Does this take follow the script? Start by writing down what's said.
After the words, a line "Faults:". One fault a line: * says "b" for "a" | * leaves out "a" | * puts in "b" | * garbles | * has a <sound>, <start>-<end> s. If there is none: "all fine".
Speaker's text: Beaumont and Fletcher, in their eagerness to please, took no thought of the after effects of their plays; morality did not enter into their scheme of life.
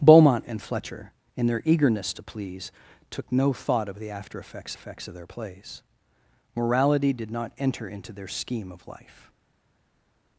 Beaumont and Fletcher, in their eagerness to please, took no thought of the after effects effects of their plays; morality did not enter into their scheme of life.
Faults:
* puts in "effects"